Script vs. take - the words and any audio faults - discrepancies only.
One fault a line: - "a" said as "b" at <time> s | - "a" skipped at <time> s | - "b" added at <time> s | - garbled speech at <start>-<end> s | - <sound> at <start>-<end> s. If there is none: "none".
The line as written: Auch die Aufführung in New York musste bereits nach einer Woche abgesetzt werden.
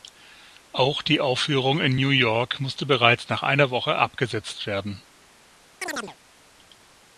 - chirp at 5.8-6.2 s